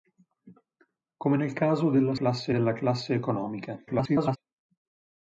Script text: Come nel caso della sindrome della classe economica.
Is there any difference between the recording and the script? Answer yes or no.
yes